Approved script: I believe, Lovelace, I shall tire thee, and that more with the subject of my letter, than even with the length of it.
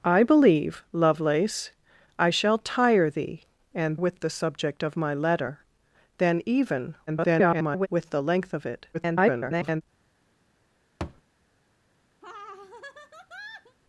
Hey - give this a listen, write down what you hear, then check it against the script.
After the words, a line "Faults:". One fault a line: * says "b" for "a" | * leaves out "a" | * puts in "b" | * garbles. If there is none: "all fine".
I believe, Lovelace, I shall tire thee, and with the subject of my letter, than even [garbled] with the length of it. [garbled]
Faults:
* leaves out "that more"
* garbles
* garbles